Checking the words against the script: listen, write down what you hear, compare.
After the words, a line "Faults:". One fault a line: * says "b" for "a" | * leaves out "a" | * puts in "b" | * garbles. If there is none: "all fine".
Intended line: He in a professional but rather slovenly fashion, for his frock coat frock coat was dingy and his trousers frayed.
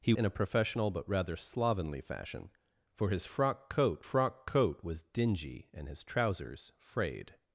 He in a professional but rather slovenly fashion, for his frock coat frock coat was dingy and his trousers frayed.
Faults:
all fine